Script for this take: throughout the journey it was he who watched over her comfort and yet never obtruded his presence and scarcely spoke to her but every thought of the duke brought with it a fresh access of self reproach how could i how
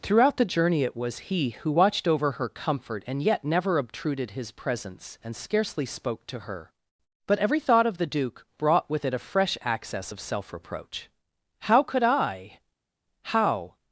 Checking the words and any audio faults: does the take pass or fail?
pass